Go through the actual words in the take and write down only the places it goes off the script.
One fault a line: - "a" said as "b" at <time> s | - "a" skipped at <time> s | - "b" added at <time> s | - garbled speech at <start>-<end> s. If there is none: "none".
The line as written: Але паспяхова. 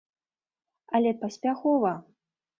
none